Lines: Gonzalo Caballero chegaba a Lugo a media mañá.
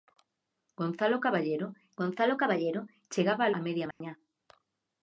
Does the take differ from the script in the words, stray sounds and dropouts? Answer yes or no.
yes